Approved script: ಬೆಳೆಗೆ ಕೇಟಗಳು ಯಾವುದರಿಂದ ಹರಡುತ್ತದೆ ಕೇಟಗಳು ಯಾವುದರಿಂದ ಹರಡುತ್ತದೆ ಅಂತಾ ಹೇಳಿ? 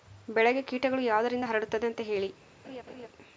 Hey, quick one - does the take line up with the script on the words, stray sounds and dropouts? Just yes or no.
no